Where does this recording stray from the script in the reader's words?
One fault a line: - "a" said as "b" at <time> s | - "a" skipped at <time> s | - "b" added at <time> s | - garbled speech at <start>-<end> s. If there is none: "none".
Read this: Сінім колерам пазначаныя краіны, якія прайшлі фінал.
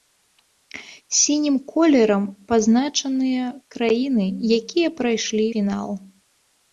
none